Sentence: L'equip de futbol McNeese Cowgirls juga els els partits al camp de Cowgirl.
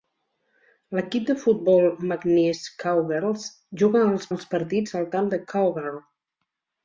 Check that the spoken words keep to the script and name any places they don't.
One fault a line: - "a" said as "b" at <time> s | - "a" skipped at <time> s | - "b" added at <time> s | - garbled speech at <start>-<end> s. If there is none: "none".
none